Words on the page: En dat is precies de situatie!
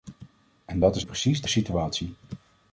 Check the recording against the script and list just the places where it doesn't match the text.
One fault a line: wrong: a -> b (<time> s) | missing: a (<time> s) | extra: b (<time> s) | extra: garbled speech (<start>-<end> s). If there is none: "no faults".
no faults